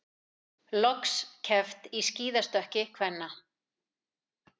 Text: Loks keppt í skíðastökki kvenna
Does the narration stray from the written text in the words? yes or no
no